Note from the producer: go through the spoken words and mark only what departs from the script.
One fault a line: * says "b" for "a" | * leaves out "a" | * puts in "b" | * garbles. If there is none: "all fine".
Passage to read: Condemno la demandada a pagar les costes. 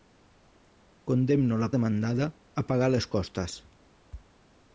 all fine